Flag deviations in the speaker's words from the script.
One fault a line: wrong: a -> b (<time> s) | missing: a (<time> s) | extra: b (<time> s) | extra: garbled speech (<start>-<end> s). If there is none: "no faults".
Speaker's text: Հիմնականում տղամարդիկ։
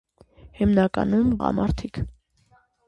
no faults